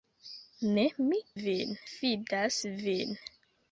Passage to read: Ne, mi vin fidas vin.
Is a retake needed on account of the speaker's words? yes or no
no